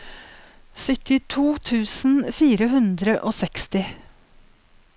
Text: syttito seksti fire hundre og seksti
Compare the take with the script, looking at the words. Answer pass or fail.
fail